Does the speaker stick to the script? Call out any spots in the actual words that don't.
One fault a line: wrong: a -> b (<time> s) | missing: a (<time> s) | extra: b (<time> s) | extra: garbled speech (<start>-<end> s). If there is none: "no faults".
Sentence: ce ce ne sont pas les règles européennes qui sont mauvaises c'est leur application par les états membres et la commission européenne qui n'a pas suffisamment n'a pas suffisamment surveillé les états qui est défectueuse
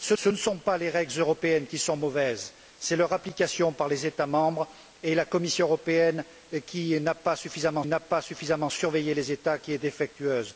no faults